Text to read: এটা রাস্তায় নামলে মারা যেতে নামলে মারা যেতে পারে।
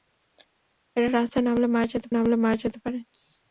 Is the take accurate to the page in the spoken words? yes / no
yes